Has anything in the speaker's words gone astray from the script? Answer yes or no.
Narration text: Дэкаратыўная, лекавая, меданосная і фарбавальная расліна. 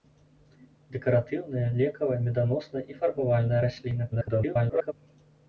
yes